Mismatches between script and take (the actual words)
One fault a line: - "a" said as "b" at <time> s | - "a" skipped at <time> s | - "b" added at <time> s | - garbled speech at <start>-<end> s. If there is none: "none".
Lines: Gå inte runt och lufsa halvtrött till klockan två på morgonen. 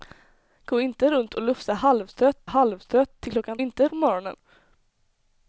- "halvtrött" added at 2.4 s
- "två" said as "inte" at 3.6 s